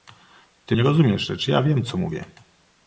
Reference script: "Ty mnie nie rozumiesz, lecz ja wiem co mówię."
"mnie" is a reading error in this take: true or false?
true